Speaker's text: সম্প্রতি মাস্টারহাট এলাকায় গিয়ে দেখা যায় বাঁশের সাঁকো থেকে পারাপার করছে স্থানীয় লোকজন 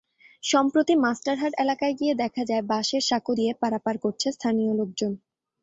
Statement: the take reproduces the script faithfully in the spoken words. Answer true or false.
false